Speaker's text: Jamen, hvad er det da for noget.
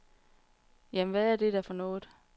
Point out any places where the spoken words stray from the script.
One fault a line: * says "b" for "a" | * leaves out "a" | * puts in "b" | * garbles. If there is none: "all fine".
all fine